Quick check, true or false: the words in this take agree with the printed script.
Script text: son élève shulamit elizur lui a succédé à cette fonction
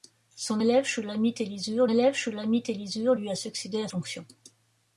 false